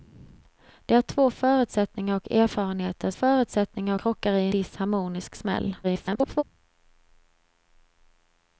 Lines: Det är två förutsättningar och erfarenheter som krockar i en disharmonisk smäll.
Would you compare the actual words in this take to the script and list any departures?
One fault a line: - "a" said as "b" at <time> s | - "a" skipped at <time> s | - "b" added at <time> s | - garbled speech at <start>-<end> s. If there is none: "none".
- "som" said as "förutsättningar" at 3.1 s
- "en" skipped at 4.5 s
- garbled speech at 5.8-6.4 s